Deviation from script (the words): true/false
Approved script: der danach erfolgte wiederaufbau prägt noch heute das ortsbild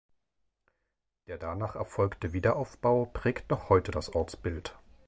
false